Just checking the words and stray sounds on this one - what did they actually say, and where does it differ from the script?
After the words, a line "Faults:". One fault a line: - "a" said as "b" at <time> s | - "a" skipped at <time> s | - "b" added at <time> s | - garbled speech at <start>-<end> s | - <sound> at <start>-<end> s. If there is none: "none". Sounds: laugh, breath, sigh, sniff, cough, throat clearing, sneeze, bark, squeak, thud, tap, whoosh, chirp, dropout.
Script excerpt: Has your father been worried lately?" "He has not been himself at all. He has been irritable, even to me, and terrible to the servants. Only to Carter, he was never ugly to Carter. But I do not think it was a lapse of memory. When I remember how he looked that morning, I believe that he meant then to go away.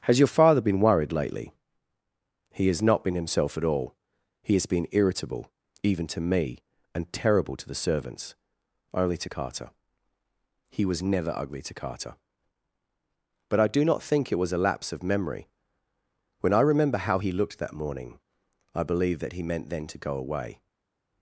Has your father been worried lately?" "He has not been himself at all. He has been irritable, even to me, and terrible to the servants. Only to Carter, he was never ugly to Carter. But I do not think it was a lapse of memory. When I remember how he looked that morning, I believe that he meant then to go away.
Faults:
none